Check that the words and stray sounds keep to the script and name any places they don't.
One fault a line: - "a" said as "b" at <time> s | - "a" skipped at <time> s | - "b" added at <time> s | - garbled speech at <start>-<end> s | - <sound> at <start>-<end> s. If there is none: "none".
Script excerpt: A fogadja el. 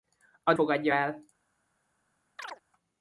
- chirp at 2.4-2.6 s